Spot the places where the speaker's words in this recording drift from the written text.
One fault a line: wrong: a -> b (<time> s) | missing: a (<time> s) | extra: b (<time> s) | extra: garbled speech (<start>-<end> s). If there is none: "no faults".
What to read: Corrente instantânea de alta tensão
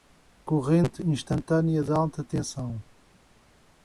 no faults